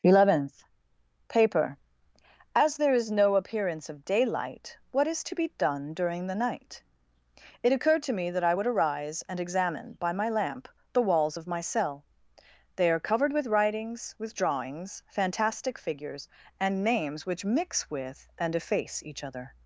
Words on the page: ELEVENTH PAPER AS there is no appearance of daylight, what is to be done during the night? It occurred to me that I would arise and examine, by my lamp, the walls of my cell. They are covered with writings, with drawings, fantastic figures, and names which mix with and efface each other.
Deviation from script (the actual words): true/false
false